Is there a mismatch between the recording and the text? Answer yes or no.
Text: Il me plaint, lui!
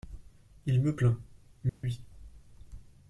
no